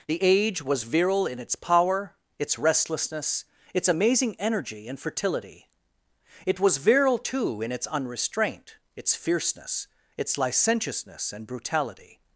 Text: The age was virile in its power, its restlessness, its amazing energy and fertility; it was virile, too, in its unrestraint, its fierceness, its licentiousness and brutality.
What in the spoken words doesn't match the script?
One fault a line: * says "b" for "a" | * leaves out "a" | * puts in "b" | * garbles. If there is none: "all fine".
all fine